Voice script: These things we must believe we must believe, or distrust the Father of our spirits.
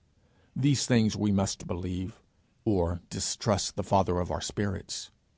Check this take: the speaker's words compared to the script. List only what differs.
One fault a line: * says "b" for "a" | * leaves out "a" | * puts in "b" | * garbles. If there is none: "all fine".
* leaves out "we must believe"